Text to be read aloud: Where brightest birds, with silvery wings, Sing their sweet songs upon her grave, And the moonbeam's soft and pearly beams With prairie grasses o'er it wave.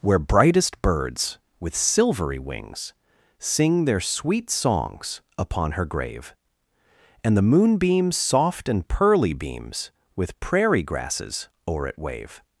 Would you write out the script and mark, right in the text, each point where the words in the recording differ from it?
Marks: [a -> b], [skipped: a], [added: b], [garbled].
Where brightest birds, with silvery wings, Sing their sweet songs upon her grave, And the moonbeam's soft and pearly beams With prairie grasses o'er it wave.